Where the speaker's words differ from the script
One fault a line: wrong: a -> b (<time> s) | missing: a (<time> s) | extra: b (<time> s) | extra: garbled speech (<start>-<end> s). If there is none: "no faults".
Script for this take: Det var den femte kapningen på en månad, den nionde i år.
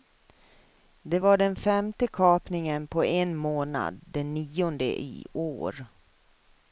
no faults